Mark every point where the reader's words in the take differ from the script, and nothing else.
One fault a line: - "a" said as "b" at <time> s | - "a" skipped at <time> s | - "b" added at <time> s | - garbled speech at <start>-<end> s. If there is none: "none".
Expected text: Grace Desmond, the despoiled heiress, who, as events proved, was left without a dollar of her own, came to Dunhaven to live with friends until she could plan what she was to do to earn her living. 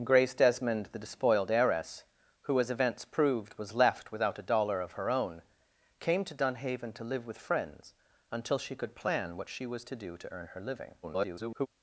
- garbled speech at 11.0-11.7 s